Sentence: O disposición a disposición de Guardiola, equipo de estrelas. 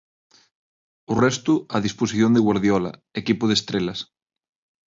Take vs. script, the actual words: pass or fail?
fail